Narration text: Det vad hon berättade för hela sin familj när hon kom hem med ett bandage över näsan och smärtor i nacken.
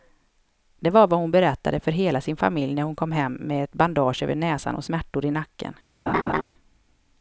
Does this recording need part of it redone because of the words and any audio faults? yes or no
yes